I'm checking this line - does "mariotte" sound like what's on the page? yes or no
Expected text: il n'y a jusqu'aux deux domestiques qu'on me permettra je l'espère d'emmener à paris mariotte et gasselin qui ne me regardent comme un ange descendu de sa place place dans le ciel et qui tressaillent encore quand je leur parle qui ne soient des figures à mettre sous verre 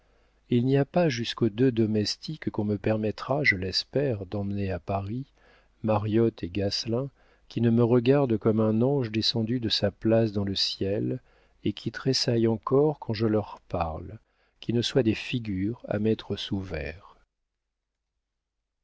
yes